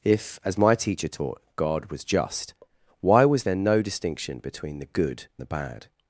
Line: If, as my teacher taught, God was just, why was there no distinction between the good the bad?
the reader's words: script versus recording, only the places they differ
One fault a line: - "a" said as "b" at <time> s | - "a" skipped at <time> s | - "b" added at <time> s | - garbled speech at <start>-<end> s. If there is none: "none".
none